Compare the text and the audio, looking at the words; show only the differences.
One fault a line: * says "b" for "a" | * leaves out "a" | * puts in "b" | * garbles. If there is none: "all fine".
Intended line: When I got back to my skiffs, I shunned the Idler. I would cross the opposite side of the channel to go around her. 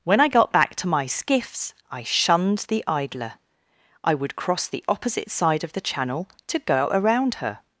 all fine